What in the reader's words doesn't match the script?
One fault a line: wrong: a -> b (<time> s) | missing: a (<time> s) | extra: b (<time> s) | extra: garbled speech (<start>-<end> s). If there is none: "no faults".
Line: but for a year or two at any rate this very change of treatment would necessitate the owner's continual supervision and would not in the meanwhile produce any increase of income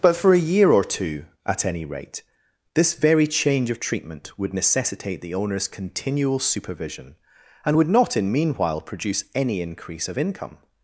missing: the (8.3 s)